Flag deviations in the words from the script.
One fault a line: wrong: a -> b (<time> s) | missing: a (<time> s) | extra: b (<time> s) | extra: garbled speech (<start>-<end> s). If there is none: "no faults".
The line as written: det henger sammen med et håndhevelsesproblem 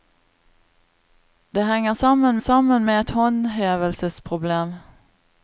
extra: sammen (2.4 s)